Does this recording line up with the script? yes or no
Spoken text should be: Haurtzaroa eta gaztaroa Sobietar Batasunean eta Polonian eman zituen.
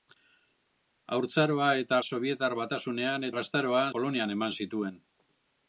no